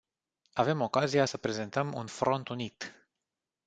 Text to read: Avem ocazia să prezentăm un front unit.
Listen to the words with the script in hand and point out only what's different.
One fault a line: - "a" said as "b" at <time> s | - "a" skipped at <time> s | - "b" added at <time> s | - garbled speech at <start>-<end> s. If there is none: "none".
none